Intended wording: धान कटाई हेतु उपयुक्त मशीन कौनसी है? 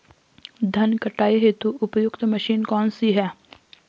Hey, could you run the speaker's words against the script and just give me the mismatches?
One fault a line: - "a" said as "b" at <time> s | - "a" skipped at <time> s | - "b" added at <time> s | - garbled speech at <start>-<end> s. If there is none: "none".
none